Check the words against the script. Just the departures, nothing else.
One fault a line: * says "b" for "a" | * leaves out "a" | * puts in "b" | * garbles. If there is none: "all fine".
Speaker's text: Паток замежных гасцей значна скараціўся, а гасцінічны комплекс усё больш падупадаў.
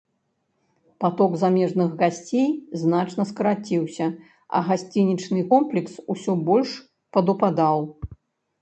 all fine